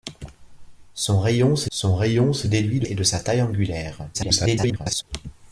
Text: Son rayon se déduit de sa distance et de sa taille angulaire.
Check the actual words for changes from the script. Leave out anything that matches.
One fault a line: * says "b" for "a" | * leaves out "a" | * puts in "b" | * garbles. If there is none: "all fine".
* puts in "son rayon se"
* leaves out "sa distance"
* garbles